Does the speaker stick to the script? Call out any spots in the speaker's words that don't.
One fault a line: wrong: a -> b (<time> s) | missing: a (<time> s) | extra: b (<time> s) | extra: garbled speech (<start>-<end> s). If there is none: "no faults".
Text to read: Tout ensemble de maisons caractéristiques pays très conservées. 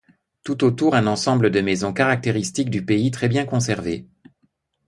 extra: autour un (0.6 s)
extra: du (2.7 s)
extra: bien (3.3 s)